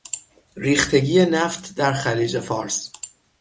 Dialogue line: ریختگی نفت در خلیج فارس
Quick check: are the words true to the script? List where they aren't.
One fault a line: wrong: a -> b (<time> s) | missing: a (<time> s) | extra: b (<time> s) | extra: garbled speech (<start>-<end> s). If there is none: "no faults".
no faults